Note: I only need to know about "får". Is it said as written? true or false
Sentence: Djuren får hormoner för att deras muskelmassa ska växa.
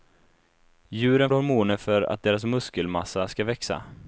false